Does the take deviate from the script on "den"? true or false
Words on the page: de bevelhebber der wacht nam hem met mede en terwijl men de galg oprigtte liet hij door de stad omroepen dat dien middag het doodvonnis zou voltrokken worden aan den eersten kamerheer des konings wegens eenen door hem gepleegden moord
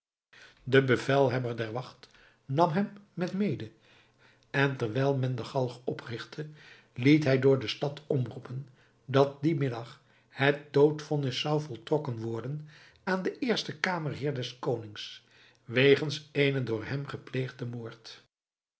false